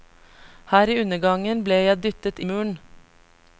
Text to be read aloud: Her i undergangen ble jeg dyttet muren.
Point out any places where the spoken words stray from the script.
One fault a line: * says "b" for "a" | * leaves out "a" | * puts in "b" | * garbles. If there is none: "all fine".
all fine